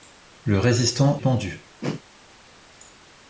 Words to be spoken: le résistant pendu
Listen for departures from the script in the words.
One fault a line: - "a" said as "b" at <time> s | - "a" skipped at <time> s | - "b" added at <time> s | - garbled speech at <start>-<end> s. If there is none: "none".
none